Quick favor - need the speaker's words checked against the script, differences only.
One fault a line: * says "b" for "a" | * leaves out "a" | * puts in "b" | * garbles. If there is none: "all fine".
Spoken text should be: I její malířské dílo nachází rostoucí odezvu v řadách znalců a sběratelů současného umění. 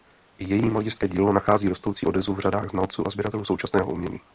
all fine